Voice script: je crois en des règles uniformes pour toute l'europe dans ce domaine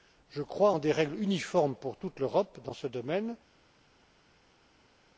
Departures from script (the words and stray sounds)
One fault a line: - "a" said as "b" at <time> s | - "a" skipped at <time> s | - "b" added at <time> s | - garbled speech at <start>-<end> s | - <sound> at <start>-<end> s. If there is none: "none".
none